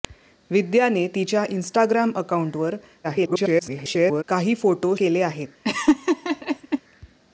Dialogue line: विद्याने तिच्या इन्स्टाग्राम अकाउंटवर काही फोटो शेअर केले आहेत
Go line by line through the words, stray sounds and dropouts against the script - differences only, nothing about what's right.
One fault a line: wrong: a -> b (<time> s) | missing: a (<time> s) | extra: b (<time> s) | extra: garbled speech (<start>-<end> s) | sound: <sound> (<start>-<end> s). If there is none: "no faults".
extra: garbled speech (3.0-4.2 s)
missing: शेअर (4.9 s)
sound: laugh (5.6-6.8 s)